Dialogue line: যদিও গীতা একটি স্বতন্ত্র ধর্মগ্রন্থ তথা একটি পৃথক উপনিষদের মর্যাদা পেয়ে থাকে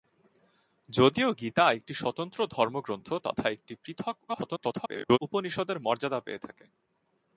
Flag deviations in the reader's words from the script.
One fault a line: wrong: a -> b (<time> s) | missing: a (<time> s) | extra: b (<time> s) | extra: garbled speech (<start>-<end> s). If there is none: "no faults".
extra: garbled speech (4.3-5.2 s)